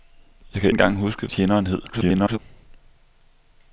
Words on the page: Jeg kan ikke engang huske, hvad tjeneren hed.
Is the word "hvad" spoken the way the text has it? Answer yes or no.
no